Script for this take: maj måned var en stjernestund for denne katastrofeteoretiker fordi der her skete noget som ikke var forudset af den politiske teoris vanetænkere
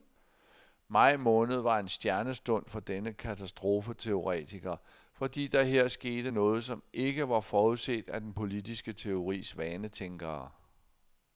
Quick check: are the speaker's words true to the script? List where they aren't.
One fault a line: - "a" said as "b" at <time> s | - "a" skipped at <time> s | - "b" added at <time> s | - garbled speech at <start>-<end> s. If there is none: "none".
none